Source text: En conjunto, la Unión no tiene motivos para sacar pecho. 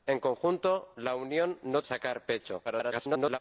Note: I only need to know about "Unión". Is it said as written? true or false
true